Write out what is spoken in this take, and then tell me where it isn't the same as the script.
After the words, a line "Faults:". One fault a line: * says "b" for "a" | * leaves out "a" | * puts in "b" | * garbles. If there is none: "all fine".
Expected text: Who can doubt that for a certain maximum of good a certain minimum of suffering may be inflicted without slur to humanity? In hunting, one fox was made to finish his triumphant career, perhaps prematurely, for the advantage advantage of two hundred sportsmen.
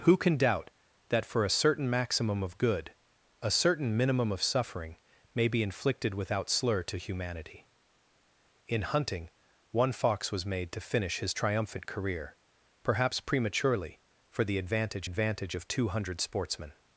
Who can doubt that for a certain maximum of good a certain minimum of suffering may be inflicted without slur to humanity? In hunting, one fox was made to finish his triumphant career, perhaps prematurely, for the advantage advantage of two hundred sportsmen.
Faults:
all fine